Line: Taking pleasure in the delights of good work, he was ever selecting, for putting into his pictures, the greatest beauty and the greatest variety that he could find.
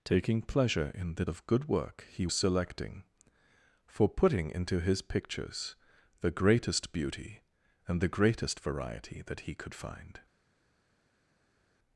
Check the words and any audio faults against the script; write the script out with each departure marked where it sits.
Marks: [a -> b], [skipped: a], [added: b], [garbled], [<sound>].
Taking pleasure in the [skipped: delights] of good work, he [skipped: was ever] selecting, for putting into his pictures, the greatest beauty and the greatest variety that he could find.